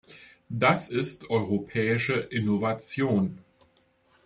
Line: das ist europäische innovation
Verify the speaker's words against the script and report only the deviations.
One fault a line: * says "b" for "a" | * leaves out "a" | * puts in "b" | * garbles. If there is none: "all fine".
all fine